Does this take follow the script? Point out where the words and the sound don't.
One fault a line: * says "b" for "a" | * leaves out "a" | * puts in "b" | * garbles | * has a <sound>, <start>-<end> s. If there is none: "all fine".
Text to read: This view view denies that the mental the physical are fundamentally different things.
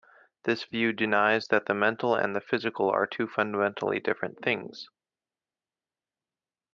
* leaves out "view"
* puts in "and"
* puts in "two"